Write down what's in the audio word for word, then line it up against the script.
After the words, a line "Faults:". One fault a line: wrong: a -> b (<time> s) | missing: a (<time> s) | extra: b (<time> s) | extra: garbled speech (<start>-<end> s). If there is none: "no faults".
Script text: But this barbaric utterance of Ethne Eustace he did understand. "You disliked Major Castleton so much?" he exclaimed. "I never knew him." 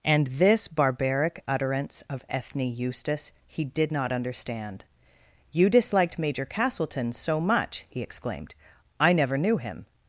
And this barbaric utterance of Ethne Eustace he did not understand. "You disliked Major Castleton so much?" he exclaimed. "I never knew him."
Faults:
wrong: But -> And (0.0 s)
extra: not (3.9 s)